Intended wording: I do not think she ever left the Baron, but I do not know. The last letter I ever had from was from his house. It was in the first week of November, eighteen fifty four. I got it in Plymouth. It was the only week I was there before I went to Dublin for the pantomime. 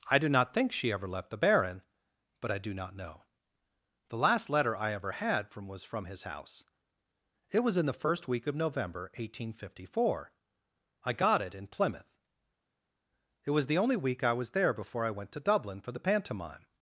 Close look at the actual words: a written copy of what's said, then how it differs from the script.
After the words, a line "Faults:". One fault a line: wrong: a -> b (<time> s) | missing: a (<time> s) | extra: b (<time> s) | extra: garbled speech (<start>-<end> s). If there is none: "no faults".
I do not think she ever left the Baron, but I do not know. The last letter I ever had from was from his house. It was in the first week of November, eighteen fifty four. I got it in Plymouth. It was the only week I was there before I went to Dublin for the pantomime.
Faults:
no faults